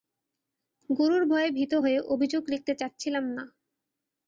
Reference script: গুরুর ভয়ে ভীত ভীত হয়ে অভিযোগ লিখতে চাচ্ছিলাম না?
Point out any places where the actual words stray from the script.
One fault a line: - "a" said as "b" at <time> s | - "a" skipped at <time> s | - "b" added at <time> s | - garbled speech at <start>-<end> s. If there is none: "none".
- "ভীত" skipped at 1.7 s